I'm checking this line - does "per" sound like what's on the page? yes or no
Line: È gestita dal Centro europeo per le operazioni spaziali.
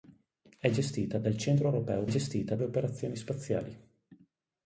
no